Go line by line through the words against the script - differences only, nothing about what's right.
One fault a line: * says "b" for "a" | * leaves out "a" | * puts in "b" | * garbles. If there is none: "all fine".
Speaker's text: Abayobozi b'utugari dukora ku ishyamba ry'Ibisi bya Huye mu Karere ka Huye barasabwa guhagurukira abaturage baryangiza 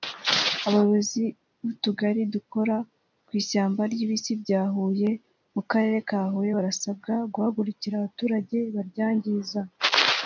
all fine